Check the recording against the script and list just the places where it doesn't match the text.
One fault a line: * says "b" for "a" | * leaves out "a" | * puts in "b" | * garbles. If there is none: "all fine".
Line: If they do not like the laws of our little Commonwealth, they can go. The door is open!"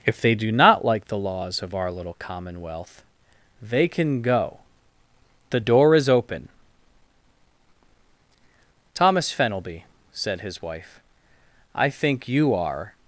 * puts in "Thomas Fenelby said his wife I think you are"